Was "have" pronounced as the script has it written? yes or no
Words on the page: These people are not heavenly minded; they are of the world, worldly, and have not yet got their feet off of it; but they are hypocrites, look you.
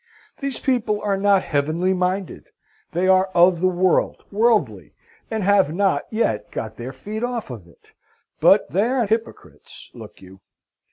yes